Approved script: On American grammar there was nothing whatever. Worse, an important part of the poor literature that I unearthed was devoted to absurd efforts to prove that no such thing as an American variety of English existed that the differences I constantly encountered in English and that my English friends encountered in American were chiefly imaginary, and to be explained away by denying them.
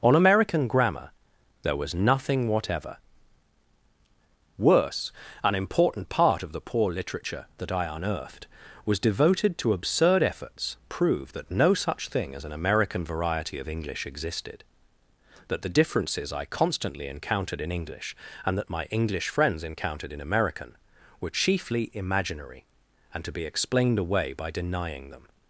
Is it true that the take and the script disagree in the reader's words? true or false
true